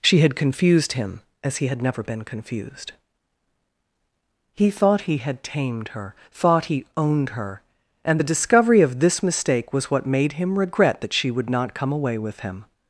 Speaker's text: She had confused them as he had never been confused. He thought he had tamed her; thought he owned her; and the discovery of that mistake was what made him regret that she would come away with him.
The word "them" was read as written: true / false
false